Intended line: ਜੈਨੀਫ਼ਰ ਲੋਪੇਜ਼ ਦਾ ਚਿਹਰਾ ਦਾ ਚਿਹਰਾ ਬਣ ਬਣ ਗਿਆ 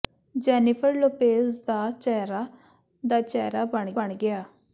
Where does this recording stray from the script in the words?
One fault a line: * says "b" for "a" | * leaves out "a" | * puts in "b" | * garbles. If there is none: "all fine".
all fine